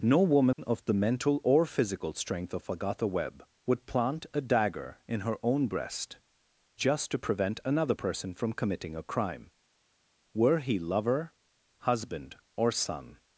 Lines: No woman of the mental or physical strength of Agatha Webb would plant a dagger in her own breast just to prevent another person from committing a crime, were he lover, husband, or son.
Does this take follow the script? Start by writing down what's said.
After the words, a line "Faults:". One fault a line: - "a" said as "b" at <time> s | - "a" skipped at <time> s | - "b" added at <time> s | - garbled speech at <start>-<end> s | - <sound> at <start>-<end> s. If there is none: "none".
No woman of the mental or physical strength of Agatha Webb would plant a dagger in her own breast just to prevent another person from committing a crime, were he lover, husband, or son.
Faults:
none